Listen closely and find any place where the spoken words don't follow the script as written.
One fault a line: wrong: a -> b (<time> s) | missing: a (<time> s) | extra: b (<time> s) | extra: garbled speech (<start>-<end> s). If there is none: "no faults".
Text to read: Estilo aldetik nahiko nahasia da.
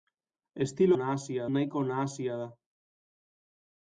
wrong: aldetik -> nahasia (1.0 s)